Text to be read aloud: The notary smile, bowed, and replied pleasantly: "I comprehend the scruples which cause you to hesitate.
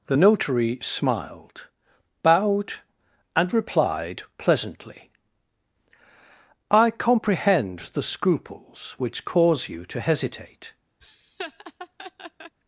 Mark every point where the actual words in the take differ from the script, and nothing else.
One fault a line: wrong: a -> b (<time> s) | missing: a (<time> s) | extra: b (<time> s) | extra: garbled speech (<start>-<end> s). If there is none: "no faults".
wrong: smile -> smiled (0.8 s)